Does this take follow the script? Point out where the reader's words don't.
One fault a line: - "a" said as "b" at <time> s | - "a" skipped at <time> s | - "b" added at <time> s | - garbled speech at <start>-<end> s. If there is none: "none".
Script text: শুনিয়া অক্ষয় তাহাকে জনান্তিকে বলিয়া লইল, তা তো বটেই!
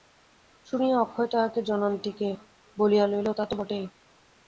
none